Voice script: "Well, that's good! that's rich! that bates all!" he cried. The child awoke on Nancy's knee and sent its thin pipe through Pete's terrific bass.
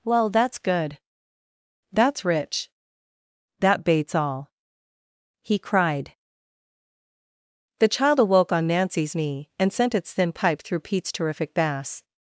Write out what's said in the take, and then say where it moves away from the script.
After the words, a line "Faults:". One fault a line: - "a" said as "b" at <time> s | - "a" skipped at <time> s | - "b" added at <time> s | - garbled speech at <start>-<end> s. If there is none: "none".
"Well, that's good! that's rich! that bates all!" he cried. The child awoke on Nancy's knee and sent its thin pipe through Pete's terrific bass.
Faults:
none